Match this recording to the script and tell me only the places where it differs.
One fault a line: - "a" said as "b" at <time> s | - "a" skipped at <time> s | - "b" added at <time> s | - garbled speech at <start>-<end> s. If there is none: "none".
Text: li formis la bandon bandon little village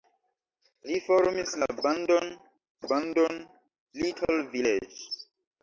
none